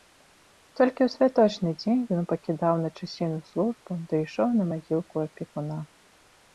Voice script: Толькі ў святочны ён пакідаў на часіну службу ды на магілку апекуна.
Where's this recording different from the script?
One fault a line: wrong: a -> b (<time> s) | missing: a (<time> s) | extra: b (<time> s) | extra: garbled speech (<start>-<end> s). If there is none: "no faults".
extra: дзень (1.8 s)
extra: ішоў (4.3 s)